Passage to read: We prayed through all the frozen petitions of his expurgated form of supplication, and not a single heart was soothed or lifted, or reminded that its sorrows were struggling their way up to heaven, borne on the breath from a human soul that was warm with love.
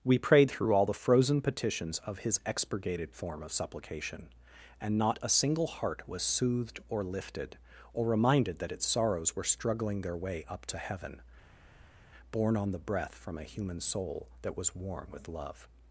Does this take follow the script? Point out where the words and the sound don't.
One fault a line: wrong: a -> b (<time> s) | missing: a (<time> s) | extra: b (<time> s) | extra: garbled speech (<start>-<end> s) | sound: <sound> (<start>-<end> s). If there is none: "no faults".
no faults